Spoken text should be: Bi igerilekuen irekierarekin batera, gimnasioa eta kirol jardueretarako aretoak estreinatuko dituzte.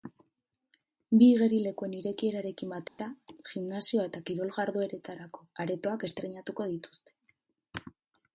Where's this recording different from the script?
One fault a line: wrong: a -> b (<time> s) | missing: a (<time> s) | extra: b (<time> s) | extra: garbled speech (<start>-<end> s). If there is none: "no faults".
no faults